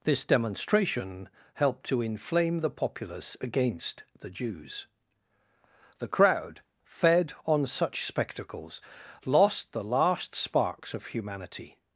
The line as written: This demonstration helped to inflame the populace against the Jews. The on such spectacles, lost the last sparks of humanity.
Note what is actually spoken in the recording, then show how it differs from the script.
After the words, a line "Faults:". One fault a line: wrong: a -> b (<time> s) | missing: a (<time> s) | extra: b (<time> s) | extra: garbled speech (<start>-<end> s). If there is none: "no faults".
This demonstration helped to inflame the populace against the Jews. The crowd, fed on such spectacles, lost the last sparks of humanity.
Faults:
extra: crowd fed (6.1 s)